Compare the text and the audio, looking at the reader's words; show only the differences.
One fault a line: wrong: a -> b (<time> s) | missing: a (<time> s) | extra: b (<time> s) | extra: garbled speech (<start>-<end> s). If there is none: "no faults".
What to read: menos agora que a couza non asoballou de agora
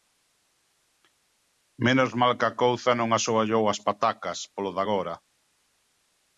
wrong: agora -> mal (2.2 s)
extra: as patacas polo (3.7 s)